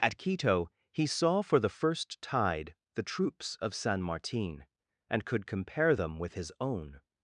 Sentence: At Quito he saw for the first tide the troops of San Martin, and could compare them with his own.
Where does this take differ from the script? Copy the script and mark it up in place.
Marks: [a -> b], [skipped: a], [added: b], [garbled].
At Quito he saw for the first tide the troops of San Martin, and could compare them with his own.